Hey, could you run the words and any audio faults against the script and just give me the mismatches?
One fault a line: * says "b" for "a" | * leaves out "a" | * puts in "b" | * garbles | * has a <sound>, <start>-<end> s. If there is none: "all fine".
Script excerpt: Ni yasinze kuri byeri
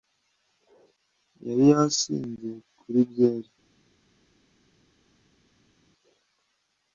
* says "Yari" for "Ni"